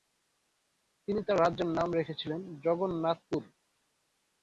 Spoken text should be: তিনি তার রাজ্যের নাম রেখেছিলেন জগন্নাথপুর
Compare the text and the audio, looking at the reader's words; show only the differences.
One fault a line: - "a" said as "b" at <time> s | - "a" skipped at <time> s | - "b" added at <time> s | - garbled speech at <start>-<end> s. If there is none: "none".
none